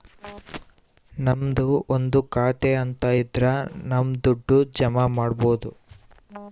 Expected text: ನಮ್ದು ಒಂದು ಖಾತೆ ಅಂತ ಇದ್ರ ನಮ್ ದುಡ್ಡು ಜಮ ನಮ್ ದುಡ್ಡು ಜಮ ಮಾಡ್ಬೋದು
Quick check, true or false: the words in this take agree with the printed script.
false